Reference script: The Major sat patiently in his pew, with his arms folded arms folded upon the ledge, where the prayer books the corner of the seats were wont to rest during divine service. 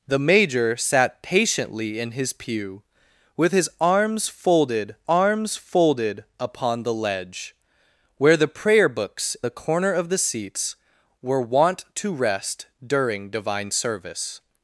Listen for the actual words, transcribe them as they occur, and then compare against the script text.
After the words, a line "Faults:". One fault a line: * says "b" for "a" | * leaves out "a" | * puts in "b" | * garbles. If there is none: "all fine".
The Major sat patiently in his pew, with his arms folded arms folded upon the ledge, where the prayer books the corner of the seats were wont to rest during divine service.
Faults:
all fine